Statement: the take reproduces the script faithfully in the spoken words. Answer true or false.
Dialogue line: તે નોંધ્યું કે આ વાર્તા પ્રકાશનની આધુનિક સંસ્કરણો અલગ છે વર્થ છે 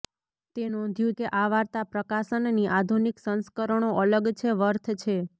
true